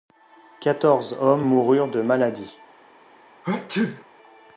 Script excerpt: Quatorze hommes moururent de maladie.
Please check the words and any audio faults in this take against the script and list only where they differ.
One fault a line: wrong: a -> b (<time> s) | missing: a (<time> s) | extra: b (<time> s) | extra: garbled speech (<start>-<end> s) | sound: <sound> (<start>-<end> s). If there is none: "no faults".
sound: sneeze (3.4-4.0 s)